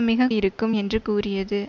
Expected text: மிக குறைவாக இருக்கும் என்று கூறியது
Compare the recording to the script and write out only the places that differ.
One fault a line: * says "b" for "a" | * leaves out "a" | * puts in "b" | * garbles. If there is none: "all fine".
* leaves out "குறைவாக"